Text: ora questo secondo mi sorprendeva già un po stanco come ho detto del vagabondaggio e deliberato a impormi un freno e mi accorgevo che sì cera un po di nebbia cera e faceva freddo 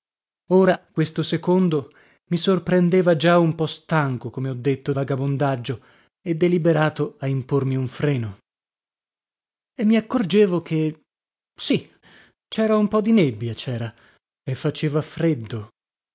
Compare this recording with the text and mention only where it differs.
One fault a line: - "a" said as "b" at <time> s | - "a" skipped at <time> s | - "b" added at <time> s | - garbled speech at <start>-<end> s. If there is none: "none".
- "del" skipped at 4.9 s